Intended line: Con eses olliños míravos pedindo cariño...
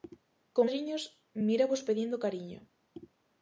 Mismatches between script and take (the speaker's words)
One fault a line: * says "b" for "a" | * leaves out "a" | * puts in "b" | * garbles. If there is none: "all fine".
* leaves out "eses"